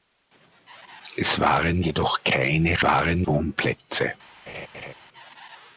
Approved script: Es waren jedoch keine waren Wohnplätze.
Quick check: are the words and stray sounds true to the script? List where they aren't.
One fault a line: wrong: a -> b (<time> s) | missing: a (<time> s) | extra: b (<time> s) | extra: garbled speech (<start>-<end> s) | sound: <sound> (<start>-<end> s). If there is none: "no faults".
sound: laugh (4.5-4.9 s)